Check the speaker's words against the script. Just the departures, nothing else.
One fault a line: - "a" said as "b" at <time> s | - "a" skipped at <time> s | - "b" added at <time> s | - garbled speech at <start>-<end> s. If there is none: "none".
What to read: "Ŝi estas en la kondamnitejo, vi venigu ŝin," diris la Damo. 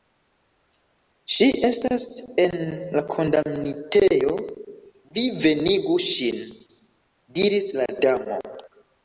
none